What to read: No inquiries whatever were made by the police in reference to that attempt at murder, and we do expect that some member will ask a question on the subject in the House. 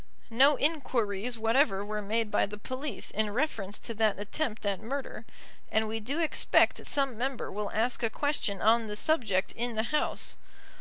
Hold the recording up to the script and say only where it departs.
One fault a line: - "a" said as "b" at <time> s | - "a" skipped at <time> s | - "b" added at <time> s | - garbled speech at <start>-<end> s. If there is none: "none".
- "that" skipped at 6.9 s